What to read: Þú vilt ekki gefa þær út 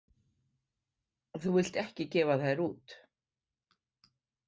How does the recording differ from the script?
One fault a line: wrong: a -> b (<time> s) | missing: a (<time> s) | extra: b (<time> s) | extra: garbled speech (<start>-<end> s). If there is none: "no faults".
no faults